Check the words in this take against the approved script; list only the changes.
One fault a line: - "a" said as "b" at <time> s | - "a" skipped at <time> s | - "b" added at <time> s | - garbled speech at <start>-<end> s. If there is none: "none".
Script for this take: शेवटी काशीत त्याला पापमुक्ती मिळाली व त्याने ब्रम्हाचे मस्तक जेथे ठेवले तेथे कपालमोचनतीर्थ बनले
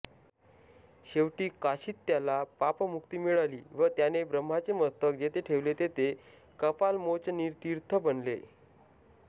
none